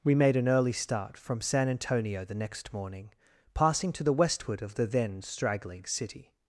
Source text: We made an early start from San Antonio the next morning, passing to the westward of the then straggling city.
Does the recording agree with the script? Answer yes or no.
yes